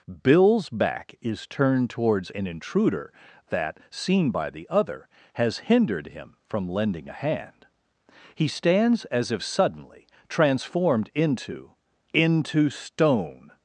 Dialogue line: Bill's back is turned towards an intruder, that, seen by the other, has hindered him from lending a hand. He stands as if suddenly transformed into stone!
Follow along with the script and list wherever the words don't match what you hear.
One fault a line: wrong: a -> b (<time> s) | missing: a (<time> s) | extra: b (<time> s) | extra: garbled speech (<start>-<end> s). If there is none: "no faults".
extra: into (12.1 s)